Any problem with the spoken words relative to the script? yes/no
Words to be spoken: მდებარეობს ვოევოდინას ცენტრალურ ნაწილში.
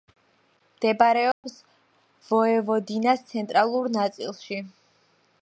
no